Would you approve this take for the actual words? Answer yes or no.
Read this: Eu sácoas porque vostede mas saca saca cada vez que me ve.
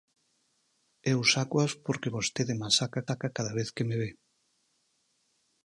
yes